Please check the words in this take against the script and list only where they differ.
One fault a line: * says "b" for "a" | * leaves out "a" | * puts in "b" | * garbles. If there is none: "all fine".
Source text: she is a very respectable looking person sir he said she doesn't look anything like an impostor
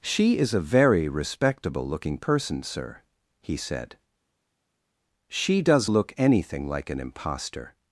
* says "does" for "doesn't"